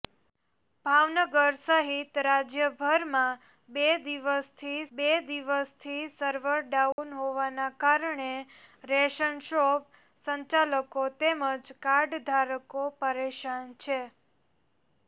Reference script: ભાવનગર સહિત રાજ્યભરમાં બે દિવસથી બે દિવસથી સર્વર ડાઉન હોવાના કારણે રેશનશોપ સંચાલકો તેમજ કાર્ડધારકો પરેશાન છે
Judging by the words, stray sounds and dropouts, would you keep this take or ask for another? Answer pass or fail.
fail